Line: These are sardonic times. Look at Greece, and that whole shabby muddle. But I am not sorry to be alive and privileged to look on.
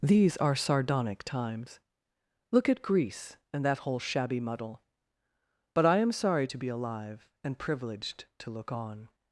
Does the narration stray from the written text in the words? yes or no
yes